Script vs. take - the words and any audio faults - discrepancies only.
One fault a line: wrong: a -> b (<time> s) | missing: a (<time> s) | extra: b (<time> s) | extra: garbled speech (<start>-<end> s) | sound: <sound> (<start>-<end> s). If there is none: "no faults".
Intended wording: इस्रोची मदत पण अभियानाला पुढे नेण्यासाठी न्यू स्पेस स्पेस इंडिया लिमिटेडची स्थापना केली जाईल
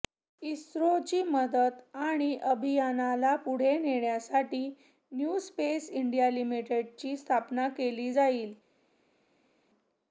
wrong: पण -> आणि (1.9 s)
missing: स्पेस (5.9 s)